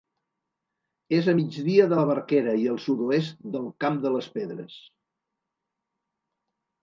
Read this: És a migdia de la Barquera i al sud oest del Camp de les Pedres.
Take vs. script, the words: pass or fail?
pass